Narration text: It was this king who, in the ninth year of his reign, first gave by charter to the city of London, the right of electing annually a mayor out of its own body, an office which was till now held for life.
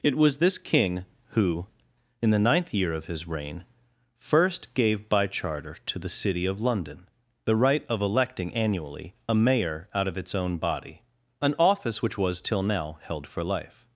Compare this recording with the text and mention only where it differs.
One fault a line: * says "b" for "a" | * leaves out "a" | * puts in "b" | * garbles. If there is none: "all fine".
all fine